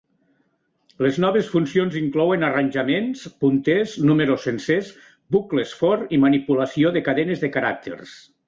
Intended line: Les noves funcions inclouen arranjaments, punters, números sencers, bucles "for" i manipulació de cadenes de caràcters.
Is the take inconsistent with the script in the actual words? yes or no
no